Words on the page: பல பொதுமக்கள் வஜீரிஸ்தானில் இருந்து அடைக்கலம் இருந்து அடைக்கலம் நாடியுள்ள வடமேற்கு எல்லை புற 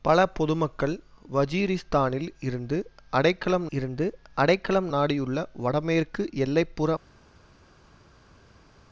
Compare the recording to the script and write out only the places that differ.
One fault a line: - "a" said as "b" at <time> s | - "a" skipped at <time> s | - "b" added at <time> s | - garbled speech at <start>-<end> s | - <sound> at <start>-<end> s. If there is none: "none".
none